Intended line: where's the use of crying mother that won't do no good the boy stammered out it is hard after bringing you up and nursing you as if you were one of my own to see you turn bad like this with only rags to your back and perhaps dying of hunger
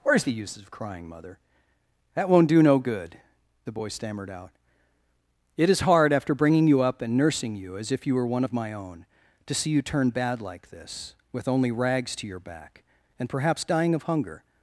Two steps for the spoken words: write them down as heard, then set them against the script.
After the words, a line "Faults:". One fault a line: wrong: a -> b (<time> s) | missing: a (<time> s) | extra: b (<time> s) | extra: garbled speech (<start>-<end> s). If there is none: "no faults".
where's the use of crying mother that won't do no good the boy stammered out it is hard after bringing you up and nursing you as if you were one of my own to see you turn bad like this with only rags to your back and perhaps dying of hunger
Faults:
no faults